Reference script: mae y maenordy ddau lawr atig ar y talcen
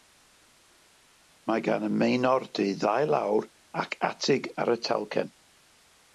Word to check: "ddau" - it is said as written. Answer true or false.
true